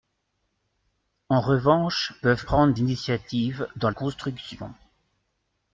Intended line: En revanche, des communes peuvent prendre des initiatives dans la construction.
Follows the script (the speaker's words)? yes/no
no